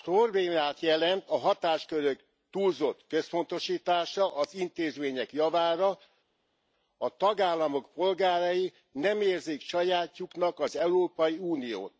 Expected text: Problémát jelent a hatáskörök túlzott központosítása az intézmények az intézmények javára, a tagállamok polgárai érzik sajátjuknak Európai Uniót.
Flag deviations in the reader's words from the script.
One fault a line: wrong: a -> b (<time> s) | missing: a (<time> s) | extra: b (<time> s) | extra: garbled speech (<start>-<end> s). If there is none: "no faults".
missing: az intézmények (5.3 s)
extra: nem (8.9 s)
extra: az (10.6 s)